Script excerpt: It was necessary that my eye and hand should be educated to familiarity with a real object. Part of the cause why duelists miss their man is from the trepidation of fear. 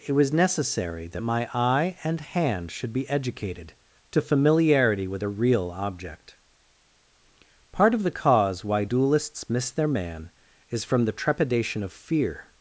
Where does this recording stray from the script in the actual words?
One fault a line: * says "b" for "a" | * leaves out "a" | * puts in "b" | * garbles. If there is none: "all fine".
all fine